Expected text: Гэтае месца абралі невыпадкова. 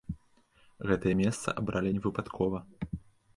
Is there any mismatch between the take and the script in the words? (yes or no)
no